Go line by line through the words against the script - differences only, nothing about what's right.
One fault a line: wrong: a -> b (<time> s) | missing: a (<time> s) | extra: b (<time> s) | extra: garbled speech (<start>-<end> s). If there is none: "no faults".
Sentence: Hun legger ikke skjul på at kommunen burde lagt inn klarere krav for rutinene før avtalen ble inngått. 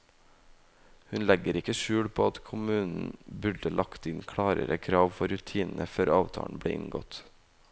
no faults